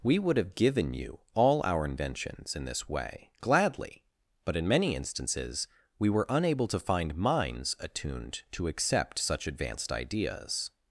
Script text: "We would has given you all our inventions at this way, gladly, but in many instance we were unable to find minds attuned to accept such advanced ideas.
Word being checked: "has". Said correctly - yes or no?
no